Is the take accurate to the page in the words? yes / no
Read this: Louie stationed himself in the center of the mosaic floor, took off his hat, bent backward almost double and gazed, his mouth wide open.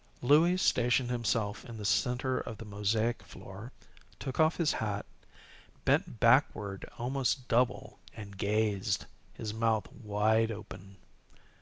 yes